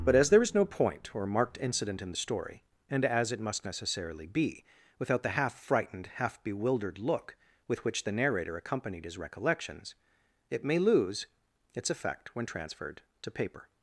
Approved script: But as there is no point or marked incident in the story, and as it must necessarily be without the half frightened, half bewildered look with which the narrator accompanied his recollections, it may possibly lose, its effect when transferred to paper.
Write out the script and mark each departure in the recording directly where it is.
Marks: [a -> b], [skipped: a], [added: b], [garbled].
But as there is no point or marked incident in the story, and as it must necessarily be without the half frightened, half bewildered look with which the narrator accompanied his recollections, it may [skipped: possibly] lose, its effect when transferred to paper.